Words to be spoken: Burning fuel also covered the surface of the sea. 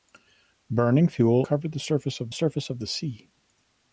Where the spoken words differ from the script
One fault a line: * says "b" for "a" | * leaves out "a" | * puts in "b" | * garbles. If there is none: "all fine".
* leaves out "also"
* puts in "surface of"